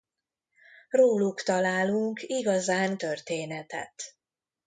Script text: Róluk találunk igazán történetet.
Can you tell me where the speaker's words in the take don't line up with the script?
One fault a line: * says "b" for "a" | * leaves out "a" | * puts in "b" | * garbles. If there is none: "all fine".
all fine